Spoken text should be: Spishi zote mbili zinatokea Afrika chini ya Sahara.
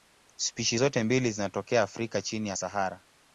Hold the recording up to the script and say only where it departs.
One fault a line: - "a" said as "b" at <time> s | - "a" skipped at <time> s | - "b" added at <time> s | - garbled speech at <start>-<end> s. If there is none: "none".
none